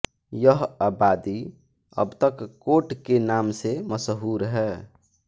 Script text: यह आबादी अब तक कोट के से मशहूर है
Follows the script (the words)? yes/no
no